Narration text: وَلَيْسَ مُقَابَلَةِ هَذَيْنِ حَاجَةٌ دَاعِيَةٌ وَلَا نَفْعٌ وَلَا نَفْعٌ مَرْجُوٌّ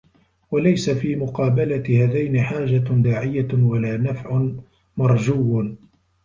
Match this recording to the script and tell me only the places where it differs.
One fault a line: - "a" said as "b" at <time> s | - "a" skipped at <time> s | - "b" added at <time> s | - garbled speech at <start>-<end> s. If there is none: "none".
- "فِي" added at 0.9 s
- "وَلَا نَفْعٌ" skipped at 4.5 s